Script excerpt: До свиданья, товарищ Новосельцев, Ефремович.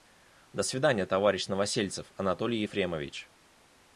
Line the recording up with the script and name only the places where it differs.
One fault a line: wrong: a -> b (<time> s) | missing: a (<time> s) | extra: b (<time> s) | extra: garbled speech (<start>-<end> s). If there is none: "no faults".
extra: Анатолий (2.1 s)